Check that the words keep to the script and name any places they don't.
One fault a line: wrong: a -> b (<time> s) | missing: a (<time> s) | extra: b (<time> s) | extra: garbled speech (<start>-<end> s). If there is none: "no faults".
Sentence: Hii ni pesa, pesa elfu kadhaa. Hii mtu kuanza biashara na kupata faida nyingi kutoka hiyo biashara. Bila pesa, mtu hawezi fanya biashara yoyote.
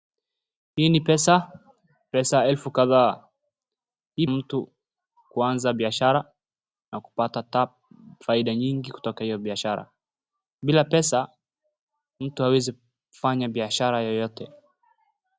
no faults